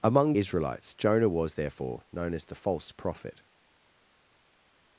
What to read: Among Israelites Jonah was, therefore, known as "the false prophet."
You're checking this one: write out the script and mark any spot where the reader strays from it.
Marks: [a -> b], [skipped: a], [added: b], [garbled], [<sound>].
Among Israelites Jonah was, therefore, known as "the false prophet."